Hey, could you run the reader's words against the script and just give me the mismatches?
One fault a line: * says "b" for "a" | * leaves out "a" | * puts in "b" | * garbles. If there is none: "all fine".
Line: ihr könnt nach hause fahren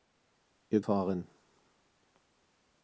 * leaves out "könnt nach hause"